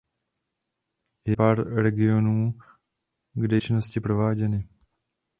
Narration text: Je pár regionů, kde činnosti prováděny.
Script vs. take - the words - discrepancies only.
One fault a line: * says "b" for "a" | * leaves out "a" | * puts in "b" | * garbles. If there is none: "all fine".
all fine